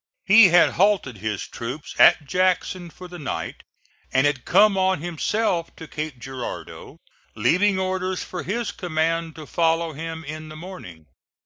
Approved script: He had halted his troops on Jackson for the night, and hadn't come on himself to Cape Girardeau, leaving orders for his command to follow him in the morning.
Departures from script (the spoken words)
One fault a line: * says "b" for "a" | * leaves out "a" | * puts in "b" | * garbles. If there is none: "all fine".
* says "at" for "on"
* says "had" for "hadn't"